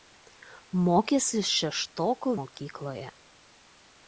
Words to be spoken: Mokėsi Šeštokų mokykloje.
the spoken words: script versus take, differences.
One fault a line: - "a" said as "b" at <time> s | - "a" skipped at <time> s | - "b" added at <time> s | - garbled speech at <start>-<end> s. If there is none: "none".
none